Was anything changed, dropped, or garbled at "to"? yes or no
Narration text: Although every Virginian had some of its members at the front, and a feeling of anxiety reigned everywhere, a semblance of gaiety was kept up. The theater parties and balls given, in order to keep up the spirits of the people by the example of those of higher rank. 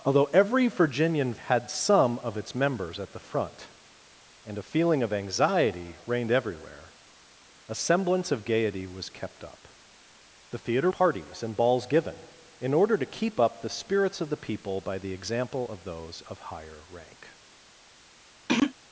no